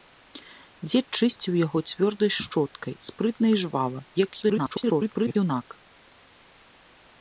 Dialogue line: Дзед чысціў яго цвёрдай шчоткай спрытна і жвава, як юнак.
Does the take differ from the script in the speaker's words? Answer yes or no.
yes